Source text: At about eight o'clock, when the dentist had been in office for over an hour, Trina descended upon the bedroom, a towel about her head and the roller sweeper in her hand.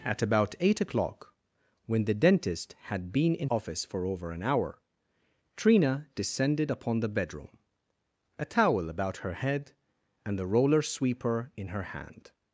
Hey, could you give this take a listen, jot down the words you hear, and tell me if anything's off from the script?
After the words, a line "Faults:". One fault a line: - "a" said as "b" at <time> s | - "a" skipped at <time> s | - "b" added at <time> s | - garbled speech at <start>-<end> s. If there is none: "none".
At about eight o'clock, when the dentist had been in office for over an hour, Trina descended upon the bedroom, a towel about her head and the roller sweeper in her hand.
Faults:
none